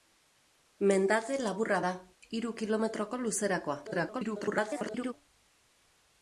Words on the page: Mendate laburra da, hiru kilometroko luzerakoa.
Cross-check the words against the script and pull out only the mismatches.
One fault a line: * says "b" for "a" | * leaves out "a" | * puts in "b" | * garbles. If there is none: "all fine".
* garbles